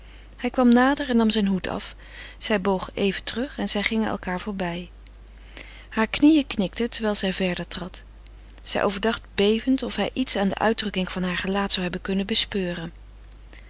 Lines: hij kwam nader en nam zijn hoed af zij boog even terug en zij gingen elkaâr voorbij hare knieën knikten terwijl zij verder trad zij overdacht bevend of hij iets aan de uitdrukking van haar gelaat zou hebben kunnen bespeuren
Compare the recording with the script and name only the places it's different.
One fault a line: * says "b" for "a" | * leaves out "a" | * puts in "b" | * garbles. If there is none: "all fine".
all fine